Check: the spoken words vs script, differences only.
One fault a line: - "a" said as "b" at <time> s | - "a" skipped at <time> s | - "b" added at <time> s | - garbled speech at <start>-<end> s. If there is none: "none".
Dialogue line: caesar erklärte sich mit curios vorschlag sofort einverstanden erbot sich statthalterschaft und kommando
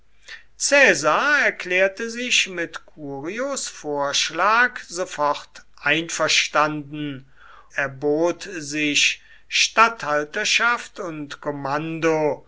none